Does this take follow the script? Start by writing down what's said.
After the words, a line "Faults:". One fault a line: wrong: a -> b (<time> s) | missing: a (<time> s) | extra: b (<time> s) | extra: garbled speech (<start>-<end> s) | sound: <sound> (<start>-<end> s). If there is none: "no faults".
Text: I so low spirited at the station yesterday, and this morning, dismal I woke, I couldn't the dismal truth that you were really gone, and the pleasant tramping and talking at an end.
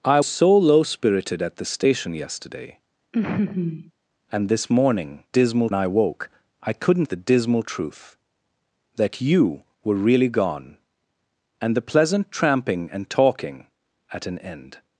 I so low spirited at the station yesterday, and this morning, dismal I woke, I couldn't the dismal truth that you were really gone, and the pleasant tramping and talking at an end.
Faults:
sound: laugh (3.1-3.9 s)